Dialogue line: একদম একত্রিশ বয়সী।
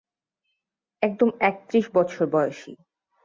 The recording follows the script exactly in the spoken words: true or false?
false